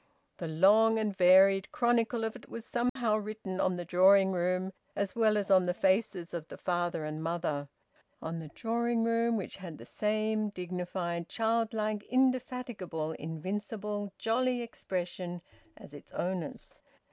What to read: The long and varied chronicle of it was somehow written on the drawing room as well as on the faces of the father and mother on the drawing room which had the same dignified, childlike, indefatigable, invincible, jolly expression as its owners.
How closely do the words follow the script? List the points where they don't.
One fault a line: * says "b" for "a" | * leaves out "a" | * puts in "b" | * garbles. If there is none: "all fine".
all fine